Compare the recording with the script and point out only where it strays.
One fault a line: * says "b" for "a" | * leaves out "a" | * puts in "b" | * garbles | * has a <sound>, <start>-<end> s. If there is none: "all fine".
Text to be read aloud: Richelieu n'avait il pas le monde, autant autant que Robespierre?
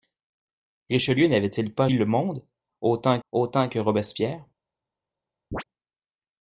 * has a chirp, 5.5-5.6 s